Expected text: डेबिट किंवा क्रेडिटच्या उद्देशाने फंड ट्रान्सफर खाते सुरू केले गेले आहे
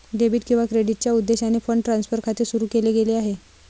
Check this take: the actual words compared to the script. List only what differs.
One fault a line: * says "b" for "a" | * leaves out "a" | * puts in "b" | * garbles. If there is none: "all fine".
all fine